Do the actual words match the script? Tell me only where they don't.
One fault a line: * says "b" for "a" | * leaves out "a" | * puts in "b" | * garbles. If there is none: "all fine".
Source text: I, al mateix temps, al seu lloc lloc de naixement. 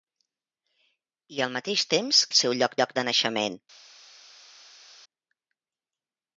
all fine